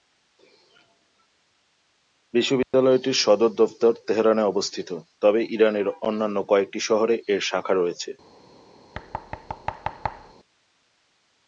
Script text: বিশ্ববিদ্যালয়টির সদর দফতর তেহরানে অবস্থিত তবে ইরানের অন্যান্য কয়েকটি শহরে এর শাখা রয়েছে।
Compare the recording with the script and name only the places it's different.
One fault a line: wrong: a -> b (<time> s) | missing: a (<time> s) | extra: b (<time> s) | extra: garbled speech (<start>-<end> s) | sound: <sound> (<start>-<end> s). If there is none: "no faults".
sound: dropout (2.6-2.7 s)
sound: thud (8.9-10.3 s)